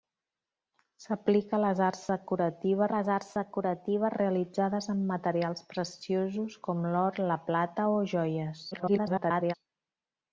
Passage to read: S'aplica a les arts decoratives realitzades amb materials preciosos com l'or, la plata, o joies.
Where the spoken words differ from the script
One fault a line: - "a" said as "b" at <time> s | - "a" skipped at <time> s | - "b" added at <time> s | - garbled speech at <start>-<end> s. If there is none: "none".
- "les arts decoratives" added at 2.9 s
- garbled speech at 8.7-9.5 s